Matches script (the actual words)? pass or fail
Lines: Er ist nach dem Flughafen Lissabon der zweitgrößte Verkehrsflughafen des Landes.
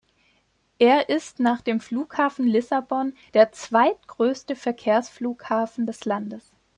pass